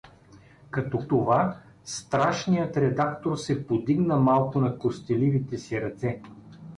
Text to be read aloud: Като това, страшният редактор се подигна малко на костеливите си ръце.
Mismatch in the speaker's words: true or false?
false